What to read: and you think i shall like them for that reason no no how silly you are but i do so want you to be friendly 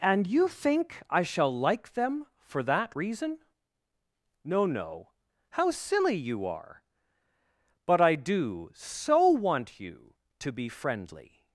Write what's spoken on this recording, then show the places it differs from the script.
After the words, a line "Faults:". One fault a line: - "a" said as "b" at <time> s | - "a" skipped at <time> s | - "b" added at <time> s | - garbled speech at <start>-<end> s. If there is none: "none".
and you think i shall like them for that reason no no how silly you are but i do so want you to be friendly
Faults:
none